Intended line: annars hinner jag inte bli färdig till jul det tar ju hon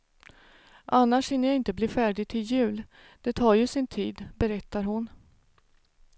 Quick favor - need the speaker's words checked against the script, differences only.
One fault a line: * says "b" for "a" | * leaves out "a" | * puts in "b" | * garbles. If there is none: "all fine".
* puts in "sin tid berättar"